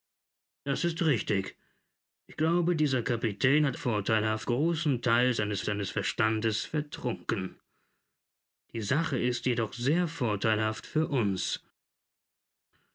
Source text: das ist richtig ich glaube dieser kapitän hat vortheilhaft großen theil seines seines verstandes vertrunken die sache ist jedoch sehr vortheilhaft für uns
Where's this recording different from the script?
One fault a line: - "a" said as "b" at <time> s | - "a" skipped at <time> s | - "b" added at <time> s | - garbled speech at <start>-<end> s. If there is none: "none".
none